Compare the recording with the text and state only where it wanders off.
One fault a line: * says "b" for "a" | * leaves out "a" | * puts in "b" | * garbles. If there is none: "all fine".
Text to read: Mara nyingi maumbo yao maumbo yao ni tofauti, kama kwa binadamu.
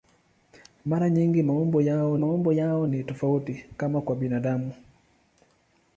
all fine